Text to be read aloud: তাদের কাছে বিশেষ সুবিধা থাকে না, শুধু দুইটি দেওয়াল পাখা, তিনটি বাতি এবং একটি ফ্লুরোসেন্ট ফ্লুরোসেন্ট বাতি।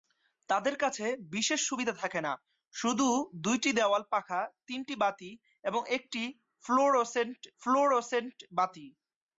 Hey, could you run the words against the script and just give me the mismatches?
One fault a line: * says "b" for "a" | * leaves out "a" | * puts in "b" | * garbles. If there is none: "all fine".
all fine